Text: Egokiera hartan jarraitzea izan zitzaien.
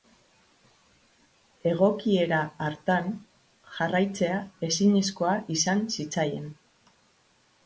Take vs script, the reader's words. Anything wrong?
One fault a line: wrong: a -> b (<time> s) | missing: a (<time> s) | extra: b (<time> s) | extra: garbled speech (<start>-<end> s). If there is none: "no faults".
extra: ezinezkoa (4.7 s)